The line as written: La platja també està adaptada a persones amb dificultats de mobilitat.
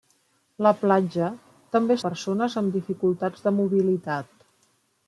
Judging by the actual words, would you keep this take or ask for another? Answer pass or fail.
fail